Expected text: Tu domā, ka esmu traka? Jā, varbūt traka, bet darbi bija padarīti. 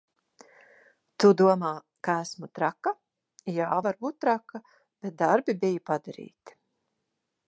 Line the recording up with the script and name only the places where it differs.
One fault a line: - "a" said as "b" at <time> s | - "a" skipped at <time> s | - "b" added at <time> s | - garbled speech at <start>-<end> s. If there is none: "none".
none